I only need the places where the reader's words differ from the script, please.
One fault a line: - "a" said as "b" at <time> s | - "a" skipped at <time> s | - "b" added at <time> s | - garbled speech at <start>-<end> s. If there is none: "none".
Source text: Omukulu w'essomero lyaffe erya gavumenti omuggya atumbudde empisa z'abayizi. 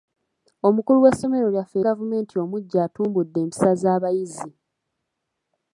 - "erya" skipped at 1.8 s